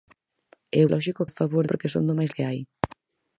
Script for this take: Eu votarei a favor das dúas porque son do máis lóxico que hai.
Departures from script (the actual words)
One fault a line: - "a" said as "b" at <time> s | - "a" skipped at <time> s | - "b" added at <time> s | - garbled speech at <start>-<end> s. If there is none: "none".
- "votarei" said as "lóxico" at 0.9 s
- "das dúas" skipped at 1.6 s
- "lóxico" skipped at 2.3 s